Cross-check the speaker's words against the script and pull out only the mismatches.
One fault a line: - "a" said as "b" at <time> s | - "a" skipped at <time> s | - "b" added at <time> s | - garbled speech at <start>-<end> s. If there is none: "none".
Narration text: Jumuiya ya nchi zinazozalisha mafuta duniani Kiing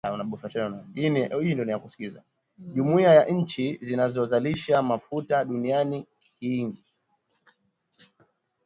none